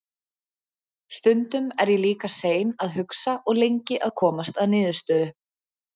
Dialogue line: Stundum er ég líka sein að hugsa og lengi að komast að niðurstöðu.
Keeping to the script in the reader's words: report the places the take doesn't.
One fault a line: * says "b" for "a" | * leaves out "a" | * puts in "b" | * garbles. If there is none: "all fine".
all fine